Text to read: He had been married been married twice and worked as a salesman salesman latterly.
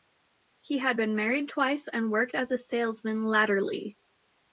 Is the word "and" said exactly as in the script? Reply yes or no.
yes